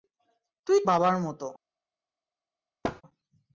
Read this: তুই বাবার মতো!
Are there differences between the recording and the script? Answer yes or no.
no